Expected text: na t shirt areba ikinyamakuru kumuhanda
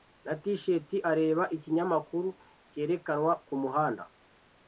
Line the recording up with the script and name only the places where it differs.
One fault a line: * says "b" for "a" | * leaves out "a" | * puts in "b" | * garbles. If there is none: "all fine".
* puts in "cyerekanwa"